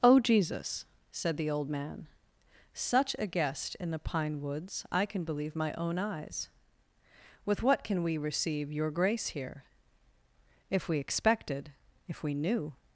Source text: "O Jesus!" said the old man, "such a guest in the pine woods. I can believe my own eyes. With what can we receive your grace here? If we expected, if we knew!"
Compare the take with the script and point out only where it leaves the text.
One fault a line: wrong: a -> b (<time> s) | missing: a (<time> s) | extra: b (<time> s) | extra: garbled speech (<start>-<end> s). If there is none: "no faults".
no faults